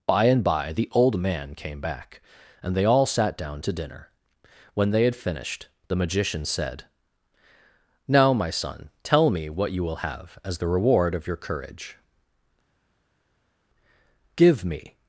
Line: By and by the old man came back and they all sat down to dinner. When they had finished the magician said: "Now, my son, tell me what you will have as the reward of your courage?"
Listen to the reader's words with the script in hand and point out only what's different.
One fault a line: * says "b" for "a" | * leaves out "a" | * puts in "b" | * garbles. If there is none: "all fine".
* puts in "Give me"